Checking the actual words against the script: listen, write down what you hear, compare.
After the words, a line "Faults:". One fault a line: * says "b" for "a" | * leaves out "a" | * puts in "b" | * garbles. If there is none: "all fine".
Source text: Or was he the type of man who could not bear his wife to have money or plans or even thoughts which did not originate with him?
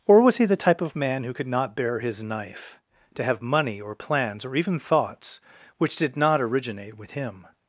Or was he the type of man who could not bear his knife to have money or plans or even thoughts which did not originate with him?
Faults:
* says "knife" for "wife"